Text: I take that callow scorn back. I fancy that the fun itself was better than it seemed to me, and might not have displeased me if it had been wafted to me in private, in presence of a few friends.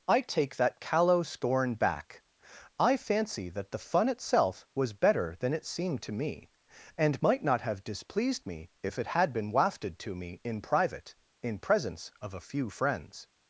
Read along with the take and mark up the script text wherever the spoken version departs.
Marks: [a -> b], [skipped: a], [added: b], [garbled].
I take that callow scorn back. I fancy that the fun itself was better than it seemed to me, and might not have displeased me if it had been wafted to me in private, in presence of a few friends.